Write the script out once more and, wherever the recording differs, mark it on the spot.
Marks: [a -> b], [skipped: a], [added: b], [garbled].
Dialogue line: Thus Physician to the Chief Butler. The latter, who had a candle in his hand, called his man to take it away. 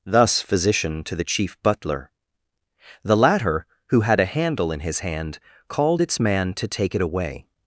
Thus Physician to the Chief Butler. The latter, who had a [candle -> handle] in his hand, called [his -> its] man to take it away.